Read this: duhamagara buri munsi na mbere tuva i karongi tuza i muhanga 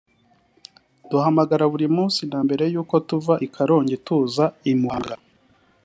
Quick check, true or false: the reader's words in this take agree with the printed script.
false